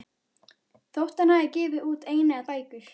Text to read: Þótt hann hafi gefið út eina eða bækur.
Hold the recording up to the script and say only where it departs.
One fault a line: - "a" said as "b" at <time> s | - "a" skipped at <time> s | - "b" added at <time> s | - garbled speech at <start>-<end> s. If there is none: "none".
none